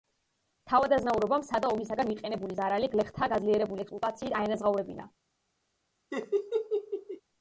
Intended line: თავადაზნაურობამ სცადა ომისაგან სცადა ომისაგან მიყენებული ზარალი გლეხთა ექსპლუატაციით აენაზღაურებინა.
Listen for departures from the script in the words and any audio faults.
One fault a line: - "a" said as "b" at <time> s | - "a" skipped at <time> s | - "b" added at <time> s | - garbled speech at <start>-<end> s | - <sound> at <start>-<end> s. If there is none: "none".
- "სცადა ომისაგან" skipped at 2.1 s
- "გაძლიერებული" added at 3.4 s
- laugh at 6.1-7.2 s